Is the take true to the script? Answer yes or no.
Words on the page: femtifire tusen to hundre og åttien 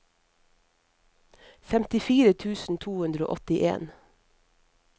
yes